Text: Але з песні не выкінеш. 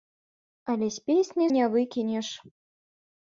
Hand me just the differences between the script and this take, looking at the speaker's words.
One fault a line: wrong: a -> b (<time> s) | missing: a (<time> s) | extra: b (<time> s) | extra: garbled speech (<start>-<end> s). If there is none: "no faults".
no faults